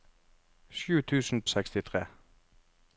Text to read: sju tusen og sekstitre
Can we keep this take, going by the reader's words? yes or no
yes